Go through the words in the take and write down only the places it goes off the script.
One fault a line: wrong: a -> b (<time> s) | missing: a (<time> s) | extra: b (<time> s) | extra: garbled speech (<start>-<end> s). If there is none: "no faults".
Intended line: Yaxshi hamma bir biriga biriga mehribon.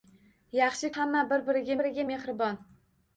no faults